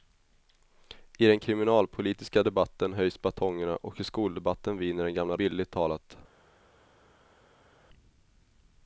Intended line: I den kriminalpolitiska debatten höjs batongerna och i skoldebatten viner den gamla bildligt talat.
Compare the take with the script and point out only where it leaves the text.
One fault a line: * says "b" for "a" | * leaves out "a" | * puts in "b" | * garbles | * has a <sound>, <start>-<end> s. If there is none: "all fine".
all fine